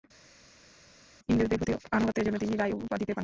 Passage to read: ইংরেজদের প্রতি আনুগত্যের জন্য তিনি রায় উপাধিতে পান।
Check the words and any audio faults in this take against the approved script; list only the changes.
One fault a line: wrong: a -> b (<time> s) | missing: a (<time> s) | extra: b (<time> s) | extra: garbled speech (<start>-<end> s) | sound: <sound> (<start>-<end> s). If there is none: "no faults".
no faults